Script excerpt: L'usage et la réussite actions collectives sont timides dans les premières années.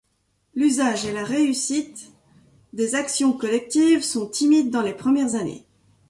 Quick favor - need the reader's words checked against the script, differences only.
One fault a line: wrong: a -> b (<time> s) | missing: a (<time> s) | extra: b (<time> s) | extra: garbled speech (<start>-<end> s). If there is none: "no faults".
extra: des (2.7 s)